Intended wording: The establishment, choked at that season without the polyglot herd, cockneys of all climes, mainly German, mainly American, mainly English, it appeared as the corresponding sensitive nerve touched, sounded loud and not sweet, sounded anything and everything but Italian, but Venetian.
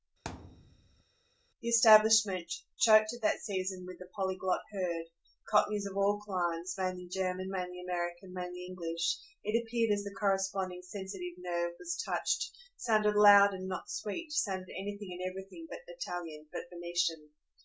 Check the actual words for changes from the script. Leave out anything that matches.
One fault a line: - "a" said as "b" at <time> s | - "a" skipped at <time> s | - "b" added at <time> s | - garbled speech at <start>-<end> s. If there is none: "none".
- "without" said as "with" at 3.9 s
- "was" added at 11.8 s